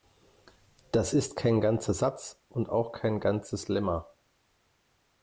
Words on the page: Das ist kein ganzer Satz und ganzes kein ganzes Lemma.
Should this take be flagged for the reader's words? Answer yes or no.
yes